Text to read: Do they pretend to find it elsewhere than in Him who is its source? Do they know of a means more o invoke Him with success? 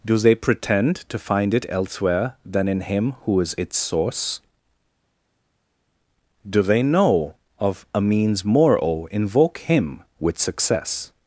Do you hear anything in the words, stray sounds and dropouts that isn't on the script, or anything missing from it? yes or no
no